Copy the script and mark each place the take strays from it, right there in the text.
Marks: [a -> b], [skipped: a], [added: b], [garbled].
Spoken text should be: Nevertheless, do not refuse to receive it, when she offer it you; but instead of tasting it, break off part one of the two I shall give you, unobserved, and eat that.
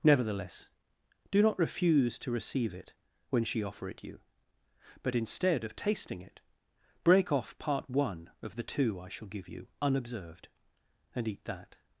Nevertheless, do not refuse to receive it, when she offer it you; but instead of tasting it, break off part one of the two I shall give you, unobserved, and eat that.